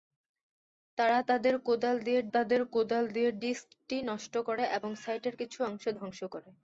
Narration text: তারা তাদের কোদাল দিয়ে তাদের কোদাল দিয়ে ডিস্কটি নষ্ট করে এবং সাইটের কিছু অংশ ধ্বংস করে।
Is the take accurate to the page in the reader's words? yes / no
yes